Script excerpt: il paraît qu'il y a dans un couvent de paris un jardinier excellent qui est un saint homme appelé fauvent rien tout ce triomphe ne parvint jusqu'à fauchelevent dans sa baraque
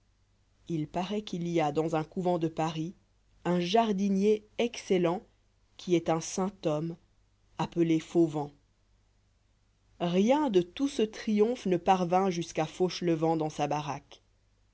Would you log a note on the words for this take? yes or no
yes